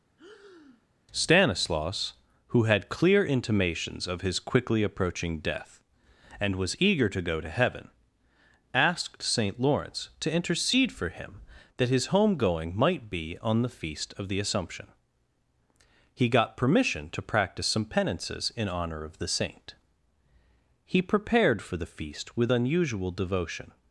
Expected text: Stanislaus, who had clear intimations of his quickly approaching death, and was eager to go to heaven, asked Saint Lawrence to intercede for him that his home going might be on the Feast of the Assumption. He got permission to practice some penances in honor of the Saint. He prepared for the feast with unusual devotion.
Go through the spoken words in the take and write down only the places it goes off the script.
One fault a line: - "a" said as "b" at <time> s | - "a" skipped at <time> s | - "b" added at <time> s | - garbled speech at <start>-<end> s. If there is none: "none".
none